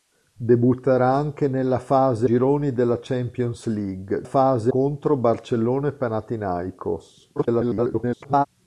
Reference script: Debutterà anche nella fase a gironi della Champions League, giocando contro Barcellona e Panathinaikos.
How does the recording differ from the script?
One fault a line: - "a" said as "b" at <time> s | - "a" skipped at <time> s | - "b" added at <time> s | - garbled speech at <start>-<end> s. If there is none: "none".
- "a" skipped at 2.3 s
- "giocando" said as "fase" at 4.2 s
- garbled speech at 7.4-8.5 s